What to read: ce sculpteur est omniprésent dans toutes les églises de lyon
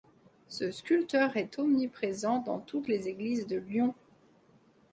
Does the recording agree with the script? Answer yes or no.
yes